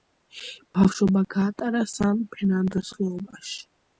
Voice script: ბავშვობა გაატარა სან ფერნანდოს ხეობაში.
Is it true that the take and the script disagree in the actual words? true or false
false